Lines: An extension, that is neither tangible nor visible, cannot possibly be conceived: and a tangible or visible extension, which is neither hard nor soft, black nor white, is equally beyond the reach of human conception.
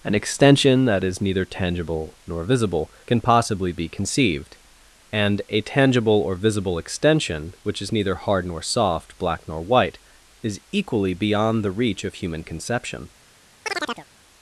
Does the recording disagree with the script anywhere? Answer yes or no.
yes